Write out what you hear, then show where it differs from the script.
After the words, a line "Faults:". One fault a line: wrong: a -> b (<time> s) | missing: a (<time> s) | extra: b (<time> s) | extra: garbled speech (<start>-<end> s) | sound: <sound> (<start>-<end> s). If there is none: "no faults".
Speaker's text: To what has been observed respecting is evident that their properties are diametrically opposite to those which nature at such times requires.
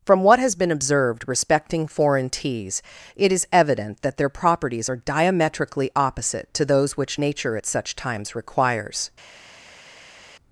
From what has been observed respecting foreign teas, it is evident that their properties are diametrically opposite to those which nature at such times requires.
Faults:
wrong: To -> From (0.1 s)
extra: foreign teas it (1.9 s)